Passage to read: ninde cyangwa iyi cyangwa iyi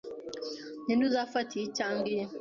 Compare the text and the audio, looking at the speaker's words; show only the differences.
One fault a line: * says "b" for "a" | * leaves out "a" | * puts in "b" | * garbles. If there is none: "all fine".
* says "uzafata" for "cyangwa"